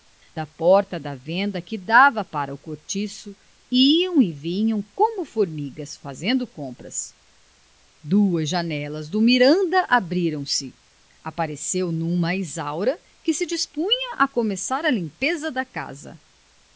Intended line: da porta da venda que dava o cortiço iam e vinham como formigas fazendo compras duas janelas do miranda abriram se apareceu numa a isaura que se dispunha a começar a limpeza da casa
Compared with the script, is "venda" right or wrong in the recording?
right